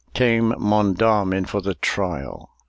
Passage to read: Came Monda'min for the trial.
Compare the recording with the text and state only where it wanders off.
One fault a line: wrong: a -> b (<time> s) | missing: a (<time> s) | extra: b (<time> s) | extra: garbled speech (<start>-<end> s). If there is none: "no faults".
no faults